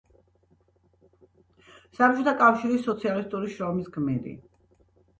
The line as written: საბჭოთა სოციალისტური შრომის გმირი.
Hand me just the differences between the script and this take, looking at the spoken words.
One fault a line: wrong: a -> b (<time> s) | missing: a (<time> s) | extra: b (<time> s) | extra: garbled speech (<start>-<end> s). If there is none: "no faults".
extra: კავშირის (2.4 s)